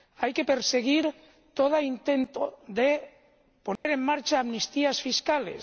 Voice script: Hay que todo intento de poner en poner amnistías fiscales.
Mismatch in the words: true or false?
true